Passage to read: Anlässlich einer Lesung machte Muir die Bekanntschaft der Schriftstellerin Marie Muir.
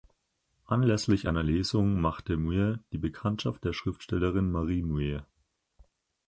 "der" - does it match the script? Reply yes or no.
yes